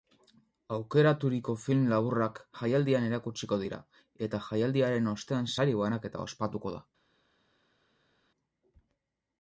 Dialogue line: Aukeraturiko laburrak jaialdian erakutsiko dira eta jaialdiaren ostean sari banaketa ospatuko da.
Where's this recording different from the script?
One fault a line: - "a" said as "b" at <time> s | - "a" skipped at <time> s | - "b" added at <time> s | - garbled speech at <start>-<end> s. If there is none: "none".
- "film" added at 1.6 s